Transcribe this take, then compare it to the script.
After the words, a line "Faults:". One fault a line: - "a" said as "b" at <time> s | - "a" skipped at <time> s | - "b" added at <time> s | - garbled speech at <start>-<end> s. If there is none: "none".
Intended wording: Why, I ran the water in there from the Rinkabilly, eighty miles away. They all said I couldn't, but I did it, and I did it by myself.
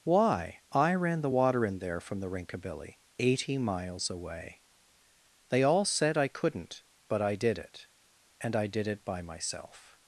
Why, I ran the water in there from the Rinkabilly, eighty miles away. They all said I couldn't, but I did it, and I did it by myself.
Faults:
none